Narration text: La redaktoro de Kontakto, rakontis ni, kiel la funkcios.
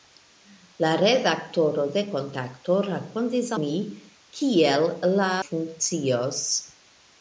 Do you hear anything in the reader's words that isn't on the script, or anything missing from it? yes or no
no